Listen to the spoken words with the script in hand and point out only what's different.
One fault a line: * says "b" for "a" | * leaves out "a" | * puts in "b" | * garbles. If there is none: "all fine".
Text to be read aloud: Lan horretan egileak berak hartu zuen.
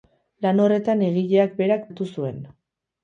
all fine